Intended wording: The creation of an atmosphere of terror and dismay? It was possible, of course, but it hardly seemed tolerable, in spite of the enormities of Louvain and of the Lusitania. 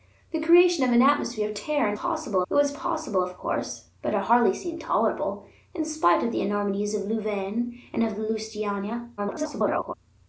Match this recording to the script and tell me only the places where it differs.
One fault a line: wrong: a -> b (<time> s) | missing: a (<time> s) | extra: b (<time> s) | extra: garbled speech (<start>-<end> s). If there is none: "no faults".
wrong: dismay -> possible (1.9 s)
extra: garbled speech (9.2-9.9 s)